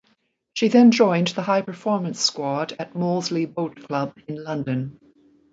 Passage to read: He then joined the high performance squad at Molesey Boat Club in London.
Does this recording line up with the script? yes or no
no